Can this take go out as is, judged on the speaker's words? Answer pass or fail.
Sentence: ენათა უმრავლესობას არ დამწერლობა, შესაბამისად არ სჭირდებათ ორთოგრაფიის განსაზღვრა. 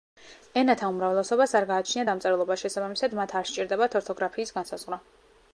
fail